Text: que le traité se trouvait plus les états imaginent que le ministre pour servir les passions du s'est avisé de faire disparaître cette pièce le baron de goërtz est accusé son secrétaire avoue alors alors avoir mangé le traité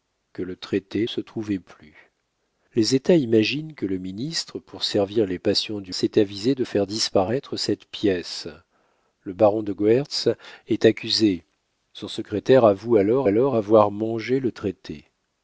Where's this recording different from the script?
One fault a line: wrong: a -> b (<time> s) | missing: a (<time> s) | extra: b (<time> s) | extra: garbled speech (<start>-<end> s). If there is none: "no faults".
no faults